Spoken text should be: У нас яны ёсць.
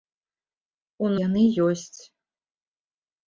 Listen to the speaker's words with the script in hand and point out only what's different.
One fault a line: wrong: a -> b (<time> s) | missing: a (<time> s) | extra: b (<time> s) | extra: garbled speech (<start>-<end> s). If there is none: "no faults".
missing: нас (1.1 s)